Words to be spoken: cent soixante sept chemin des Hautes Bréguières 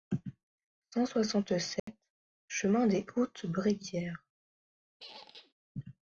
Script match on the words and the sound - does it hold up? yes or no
no